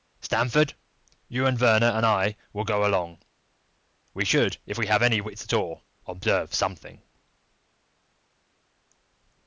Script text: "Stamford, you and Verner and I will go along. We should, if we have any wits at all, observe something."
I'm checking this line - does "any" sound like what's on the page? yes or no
yes